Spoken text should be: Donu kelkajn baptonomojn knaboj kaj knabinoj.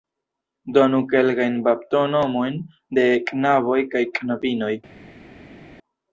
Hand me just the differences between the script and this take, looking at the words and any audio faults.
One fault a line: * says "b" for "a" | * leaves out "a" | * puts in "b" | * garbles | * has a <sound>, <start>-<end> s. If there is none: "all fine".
* puts in "de"